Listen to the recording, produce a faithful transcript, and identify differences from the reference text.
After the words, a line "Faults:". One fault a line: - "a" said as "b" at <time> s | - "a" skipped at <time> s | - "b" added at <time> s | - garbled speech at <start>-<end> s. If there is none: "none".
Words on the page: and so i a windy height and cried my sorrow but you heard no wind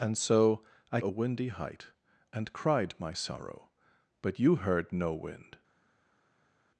and so i a windy height and cried my sorrow but you heard no wind
Faults:
none